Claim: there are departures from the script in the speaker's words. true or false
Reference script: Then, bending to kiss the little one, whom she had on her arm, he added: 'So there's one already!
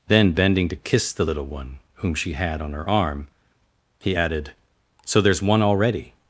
false